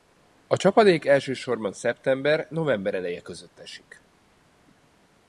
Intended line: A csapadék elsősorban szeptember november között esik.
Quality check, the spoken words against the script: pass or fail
fail